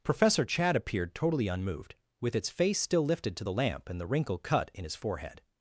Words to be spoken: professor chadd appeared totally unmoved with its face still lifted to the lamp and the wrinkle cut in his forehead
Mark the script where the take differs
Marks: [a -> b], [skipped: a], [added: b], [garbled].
professor chadd appeared totally unmoved with its face still lifted to the lamp and the wrinkle cut in his forehead